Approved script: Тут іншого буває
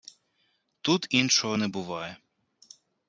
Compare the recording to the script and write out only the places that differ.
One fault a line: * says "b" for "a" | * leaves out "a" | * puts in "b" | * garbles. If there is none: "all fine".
* puts in "не"